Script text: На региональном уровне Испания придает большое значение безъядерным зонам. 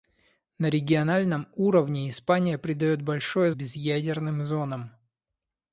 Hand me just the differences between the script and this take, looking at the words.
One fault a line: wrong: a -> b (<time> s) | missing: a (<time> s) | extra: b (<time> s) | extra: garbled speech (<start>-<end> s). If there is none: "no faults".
missing: значение (3.5 s)